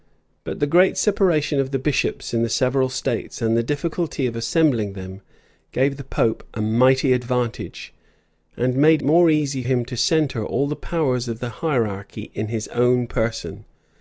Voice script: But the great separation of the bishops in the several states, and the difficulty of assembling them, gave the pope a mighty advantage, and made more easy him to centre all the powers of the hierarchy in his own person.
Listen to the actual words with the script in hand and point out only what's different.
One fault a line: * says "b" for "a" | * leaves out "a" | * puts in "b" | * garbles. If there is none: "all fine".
all fine